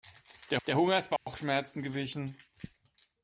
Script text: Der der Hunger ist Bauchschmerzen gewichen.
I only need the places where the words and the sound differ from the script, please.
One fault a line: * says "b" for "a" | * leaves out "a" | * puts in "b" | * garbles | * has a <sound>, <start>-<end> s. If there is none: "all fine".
* has a dropout, 1.2-1.3 s